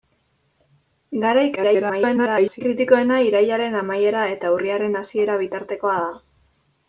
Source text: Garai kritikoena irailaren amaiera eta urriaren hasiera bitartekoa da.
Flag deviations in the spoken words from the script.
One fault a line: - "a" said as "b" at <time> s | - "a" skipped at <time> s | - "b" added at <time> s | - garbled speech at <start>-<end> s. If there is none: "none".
- garbled speech at 1.6-2.6 s